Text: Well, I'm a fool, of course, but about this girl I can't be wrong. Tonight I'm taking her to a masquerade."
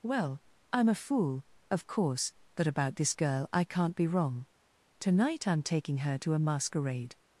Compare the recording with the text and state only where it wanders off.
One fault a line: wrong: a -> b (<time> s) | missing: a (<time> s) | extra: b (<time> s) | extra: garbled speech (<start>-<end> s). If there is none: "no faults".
no faults